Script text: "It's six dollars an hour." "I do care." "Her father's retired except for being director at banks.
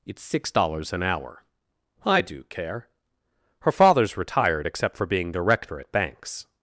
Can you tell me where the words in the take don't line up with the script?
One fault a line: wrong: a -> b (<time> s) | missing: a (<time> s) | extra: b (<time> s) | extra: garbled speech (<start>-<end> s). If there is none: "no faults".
no faults